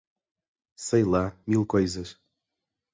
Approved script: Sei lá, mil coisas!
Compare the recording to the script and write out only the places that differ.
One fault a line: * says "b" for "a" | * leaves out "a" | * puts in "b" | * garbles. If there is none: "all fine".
all fine